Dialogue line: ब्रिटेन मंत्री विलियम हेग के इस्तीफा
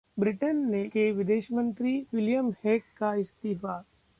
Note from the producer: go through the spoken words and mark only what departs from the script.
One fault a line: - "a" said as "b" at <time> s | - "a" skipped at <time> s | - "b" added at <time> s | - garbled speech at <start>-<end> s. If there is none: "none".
- "के विदेश" added at 0.8 s
- "के" said as "का" at 3.0 s